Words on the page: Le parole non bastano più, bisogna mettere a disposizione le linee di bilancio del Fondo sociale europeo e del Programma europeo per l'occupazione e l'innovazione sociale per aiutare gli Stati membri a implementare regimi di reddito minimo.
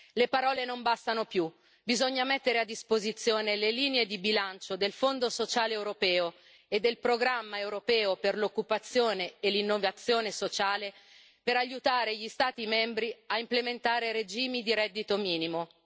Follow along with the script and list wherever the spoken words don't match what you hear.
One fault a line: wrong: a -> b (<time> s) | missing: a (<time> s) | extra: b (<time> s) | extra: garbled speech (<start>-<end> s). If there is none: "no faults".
no faults